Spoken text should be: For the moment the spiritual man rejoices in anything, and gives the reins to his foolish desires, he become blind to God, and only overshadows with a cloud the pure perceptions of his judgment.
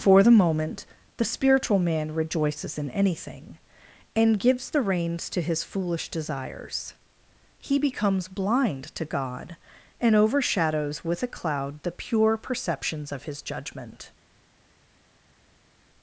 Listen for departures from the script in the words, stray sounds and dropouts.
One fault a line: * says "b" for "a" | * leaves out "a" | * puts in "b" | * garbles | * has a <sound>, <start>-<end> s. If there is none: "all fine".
* says "becomes" for "become"
* leaves out "only"